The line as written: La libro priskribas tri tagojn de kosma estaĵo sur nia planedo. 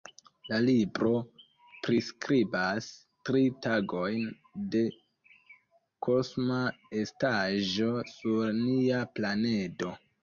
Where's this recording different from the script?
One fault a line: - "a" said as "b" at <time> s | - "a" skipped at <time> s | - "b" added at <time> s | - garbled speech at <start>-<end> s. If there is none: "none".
none